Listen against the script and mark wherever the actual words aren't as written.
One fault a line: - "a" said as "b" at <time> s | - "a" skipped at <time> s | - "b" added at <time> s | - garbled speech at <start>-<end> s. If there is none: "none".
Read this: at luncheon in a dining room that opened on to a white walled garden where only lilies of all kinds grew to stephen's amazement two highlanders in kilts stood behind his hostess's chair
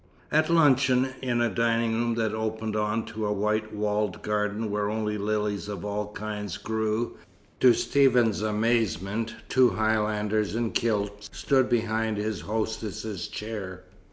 none